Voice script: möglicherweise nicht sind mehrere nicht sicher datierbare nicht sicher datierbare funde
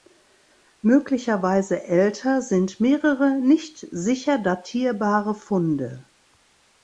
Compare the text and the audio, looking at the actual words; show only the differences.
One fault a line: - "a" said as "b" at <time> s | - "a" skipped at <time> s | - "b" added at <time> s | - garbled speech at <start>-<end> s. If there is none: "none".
- "nicht" said as "älter" at 1.8 s
- "nicht sicher datierbare" skipped at 5.3 s